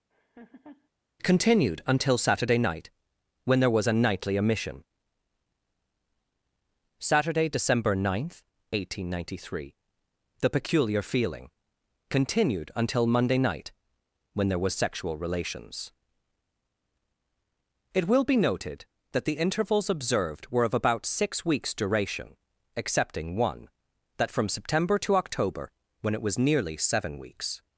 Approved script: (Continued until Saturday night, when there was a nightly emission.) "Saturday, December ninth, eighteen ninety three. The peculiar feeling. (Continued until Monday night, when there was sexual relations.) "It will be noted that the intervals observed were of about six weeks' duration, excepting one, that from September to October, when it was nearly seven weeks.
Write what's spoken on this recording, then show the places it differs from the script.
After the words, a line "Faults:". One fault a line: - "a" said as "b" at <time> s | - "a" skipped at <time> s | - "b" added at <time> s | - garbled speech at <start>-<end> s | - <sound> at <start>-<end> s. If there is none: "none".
(Continued until Saturday night, when there was a nightly emission.) "Saturday, December ninth, eighteen ninety three. The peculiar feeling. (Continued until Monday night, when there was sexual relations.) "It will be noted that the intervals observed were of about six weeks' duration, excepting one, that from September to October, when it was nearly seven weeks.
Faults:
- laugh at 0.1-0.9 s